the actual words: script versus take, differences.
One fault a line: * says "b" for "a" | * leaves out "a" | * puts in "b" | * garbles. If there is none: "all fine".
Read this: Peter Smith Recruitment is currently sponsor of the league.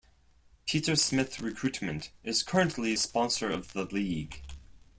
all fine